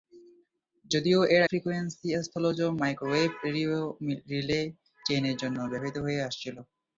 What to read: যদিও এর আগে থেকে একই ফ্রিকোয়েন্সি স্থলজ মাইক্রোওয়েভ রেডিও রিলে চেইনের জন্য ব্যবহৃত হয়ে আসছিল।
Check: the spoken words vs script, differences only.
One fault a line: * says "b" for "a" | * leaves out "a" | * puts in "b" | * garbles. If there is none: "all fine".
* leaves out "আগে থেকে একই"